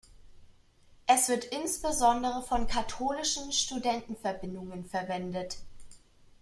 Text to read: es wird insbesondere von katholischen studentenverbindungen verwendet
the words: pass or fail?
pass